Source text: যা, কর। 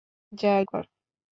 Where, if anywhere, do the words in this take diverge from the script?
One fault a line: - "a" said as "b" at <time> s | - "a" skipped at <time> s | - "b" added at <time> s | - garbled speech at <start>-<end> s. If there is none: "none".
none